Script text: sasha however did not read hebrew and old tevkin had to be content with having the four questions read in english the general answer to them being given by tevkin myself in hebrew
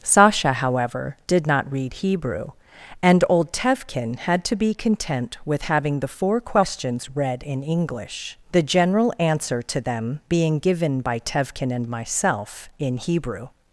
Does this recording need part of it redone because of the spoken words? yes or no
yes